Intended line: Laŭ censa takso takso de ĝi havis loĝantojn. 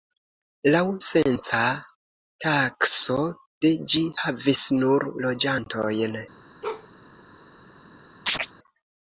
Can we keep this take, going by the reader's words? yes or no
no